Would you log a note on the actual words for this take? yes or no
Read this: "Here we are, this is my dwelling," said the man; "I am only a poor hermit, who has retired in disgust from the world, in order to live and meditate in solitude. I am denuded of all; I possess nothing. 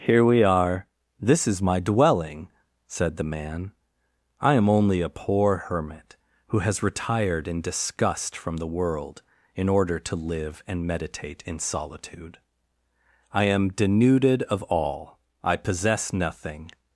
no